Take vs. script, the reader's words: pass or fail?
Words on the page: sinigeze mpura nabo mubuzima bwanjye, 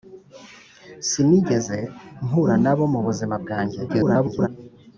fail